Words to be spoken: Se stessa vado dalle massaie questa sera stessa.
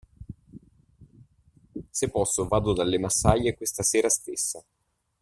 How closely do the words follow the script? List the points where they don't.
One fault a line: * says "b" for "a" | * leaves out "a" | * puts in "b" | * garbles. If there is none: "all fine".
* says "posso" for "stessa"